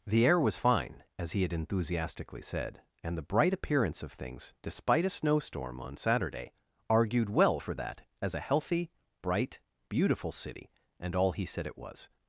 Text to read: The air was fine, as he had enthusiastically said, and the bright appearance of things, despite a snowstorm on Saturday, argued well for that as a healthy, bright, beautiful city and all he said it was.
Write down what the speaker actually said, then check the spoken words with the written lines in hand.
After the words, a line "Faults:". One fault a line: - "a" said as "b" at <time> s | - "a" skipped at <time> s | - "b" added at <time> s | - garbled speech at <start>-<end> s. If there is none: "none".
The air was fine, as he had enthusiastically said, and the bright appearance of things, despite a snowstorm on Saturday, argued well for that as a healthy, bright, beautiful city and all he said it was.
Faults:
none